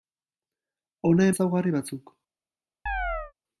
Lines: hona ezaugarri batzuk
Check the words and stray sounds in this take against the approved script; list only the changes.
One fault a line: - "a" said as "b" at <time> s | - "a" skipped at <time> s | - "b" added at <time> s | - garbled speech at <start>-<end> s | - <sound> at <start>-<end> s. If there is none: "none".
- chirp at 2.9-3.3 s